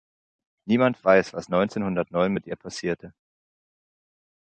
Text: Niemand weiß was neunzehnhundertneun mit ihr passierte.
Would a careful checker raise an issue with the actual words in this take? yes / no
no